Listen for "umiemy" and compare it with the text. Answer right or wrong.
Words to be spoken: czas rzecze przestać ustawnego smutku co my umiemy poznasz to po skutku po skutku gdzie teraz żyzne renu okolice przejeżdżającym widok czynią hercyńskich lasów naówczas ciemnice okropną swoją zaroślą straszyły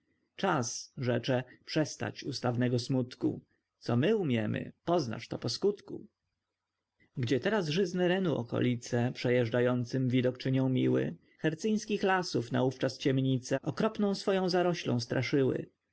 right